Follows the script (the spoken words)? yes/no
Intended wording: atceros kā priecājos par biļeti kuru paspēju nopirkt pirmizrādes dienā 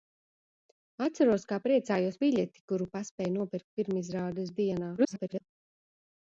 no